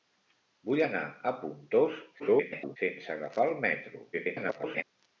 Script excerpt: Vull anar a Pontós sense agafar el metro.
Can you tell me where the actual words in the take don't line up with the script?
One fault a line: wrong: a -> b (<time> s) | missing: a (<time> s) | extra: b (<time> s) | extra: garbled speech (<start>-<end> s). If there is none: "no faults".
extra: garbled speech (2.2-2.8 s)
extra: garbled speech (4.1-4.8 s)